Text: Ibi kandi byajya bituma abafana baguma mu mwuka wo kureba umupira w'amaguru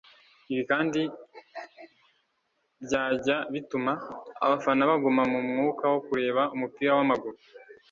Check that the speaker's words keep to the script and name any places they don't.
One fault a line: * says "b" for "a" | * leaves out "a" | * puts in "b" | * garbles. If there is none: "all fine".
all fine